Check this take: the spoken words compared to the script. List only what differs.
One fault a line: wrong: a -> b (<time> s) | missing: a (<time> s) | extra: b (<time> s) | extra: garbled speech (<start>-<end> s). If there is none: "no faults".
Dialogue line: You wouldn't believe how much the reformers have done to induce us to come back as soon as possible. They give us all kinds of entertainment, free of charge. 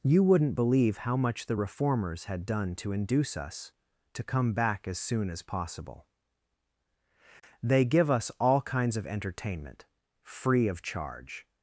wrong: have -> had (2.2 s)